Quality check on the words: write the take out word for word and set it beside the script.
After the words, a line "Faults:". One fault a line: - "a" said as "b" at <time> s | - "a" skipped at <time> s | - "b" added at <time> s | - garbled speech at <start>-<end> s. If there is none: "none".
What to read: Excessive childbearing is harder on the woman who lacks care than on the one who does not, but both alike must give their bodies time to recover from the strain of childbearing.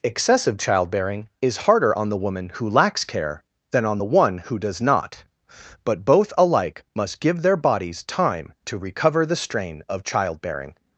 Excessive childbearing is harder on the woman who lacks care than on the one who does not, but both alike must give their bodies time to recover the strain of childbearing.
Faults:
- "from" skipped at 9.3 s